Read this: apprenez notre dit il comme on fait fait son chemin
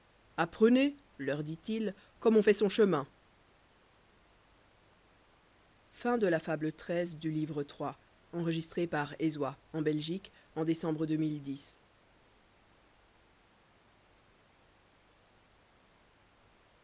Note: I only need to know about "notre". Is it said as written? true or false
false